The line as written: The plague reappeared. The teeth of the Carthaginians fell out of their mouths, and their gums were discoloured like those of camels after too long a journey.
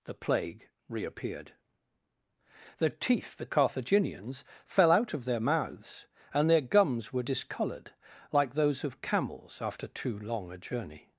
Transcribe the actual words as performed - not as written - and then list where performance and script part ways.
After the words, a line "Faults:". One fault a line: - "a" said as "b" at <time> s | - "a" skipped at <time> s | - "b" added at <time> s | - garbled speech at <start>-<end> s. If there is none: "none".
The plague reappeared. The teeth the Carthaginians fell out of their mouths, and their gums were discoloured like those of camels after too long a journey.
Faults:
- "of" skipped at 3.4 s